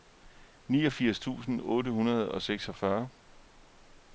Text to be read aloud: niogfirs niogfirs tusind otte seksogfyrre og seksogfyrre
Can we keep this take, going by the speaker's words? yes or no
no